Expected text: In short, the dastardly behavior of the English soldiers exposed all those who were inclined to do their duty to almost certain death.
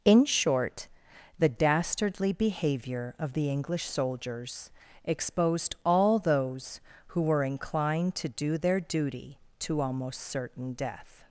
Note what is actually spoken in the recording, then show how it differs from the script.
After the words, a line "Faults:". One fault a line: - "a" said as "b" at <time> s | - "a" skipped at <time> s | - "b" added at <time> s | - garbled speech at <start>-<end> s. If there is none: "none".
In short, the dastardly behavior of the English soldiers exposed all those who were inclined to do their duty to almost certain death.
Faults:
none